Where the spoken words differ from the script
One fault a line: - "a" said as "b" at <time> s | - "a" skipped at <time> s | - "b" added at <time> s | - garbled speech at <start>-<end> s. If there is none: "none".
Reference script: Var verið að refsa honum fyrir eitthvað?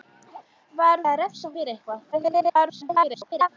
- "verið" skipped at 1.0 s
- "honum" skipped at 1.5 s
- garbled speech at 2.1-3.5 s